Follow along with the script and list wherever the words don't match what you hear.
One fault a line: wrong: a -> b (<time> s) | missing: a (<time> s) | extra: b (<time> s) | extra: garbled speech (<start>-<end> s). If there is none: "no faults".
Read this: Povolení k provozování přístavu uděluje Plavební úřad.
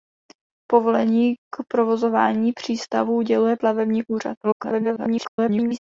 extra: garbled speech (4.4-5.8 s)